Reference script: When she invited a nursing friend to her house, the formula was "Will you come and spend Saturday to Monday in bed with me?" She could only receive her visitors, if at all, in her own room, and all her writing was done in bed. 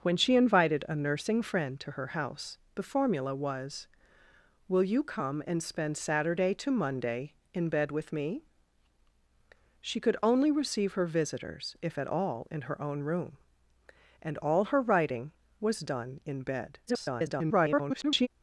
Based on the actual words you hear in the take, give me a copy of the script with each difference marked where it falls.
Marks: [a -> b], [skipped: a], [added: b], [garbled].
When she invited a nursing friend to her house, the formula was "Will you come and spend Saturday to Monday in bed with me?" She could only receive her visitors, if at all, in her own room, and all her writing was done in bed. [garbled]